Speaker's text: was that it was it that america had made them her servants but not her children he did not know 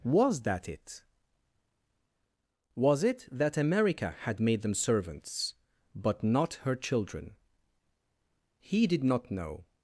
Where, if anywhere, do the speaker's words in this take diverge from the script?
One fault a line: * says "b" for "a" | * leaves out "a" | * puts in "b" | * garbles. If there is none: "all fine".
* leaves out "her"